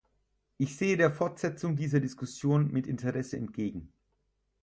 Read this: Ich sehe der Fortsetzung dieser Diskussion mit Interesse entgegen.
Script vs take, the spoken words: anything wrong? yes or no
no